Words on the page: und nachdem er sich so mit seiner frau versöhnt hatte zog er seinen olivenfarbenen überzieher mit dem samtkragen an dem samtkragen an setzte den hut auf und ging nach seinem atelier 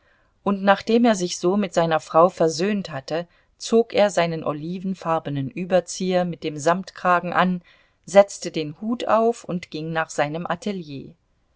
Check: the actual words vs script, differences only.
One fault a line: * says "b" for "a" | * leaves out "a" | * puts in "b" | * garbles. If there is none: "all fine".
* leaves out "dem samtkragen an"